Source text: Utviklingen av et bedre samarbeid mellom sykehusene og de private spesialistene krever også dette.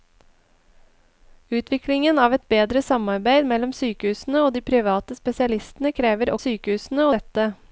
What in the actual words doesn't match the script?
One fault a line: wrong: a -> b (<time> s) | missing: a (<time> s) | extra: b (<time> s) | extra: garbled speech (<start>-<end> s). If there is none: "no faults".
wrong: også -> sykehusene (6.4 s)